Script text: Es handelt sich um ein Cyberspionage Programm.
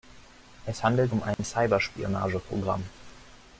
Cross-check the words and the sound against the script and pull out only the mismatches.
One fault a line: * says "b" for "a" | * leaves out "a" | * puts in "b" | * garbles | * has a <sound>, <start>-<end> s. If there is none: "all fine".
* leaves out "sich"
* has a dropout, 1.3-1.4 s